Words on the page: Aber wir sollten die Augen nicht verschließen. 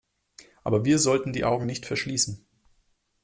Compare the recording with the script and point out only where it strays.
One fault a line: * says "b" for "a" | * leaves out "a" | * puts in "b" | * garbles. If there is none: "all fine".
all fine